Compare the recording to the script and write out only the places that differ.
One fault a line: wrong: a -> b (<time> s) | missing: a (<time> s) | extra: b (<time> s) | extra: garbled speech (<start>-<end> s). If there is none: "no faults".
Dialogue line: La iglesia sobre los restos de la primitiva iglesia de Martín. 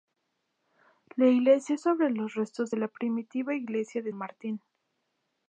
no faults